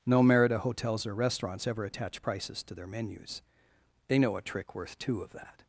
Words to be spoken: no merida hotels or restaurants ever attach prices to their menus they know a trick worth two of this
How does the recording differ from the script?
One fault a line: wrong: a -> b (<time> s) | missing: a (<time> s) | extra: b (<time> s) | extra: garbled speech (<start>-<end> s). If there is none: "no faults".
wrong: this -> that (5.3 s)